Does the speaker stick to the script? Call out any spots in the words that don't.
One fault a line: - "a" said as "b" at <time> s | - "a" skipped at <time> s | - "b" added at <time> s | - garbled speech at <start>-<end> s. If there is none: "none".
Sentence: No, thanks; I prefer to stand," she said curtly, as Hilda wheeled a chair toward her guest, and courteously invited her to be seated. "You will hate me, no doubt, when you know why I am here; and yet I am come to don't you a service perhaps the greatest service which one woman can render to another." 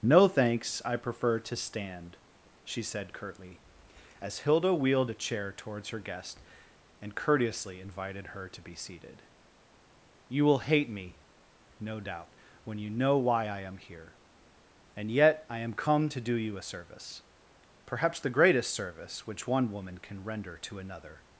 - "toward" said as "towards" at 5.6 s
- "don't" said as "do" at 16.2 s